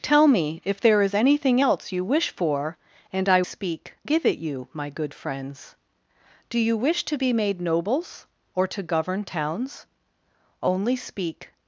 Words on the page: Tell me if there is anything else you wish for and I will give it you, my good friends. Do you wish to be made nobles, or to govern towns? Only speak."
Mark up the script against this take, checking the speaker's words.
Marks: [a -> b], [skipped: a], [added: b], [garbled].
Tell me if there is anything else you wish for and I [will -> speak] give it you, my good friends. Do you wish to be made nobles, or to govern towns? Only speak."